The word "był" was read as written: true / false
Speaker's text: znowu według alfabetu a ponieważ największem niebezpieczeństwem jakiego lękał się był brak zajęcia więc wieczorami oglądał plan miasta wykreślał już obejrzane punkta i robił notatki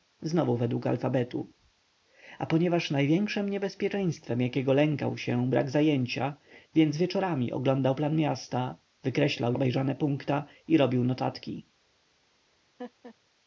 false